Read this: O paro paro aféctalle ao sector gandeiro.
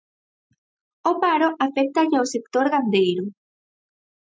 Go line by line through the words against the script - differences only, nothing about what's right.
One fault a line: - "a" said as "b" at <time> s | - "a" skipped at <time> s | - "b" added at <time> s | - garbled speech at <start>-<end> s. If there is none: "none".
- "paro" skipped at 1.5 s